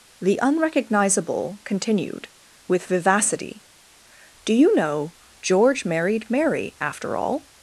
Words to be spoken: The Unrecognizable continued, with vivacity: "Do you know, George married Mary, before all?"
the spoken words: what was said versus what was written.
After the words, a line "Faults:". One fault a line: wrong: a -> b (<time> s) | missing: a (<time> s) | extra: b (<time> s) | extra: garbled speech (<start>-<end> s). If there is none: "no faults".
The Unrecognizable continued, with vivacity: "Do you know, George married Mary, after all?"
Faults:
wrong: before -> after (6.8 s)